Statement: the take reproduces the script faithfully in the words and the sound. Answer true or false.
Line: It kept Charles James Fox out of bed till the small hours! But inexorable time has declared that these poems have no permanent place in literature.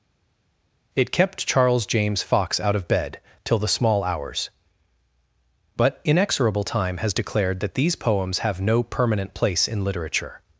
true